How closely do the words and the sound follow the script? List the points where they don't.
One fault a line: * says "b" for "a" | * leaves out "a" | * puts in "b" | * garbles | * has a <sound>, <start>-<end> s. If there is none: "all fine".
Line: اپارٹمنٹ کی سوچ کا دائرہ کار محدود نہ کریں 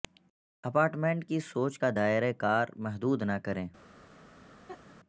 * has a laugh, 4.7-5.0 s